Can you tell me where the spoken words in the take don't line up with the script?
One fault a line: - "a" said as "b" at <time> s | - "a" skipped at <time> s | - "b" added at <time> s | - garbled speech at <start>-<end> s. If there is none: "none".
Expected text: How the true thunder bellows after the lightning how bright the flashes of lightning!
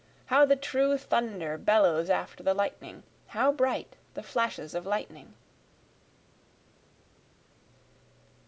none